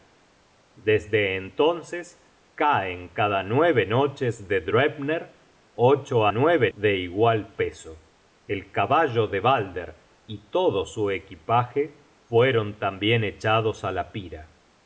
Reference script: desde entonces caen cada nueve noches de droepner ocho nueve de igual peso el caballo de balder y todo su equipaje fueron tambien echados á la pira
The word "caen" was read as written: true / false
true